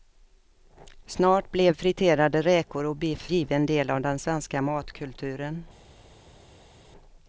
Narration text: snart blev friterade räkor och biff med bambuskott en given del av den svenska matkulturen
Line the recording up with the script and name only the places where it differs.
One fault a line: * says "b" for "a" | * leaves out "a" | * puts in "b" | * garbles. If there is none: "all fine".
* leaves out "med bambuskott en"